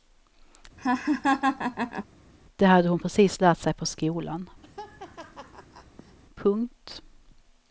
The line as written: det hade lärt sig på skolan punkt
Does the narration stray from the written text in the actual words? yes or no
yes